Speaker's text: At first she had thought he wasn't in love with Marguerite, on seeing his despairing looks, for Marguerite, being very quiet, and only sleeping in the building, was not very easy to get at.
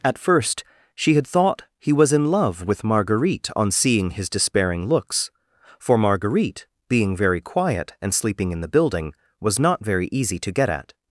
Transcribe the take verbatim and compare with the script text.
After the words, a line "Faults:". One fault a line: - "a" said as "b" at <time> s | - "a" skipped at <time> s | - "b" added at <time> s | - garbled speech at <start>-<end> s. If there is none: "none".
At first she had thought he was in love with Marguerite, on seeing his despairing looks, for Marguerite, being very quiet, and sleeping in the building, was not very easy to get at.
Faults:
- "wasn't" said as "was" at 1.9 s
- "only" skipped at 8.1 s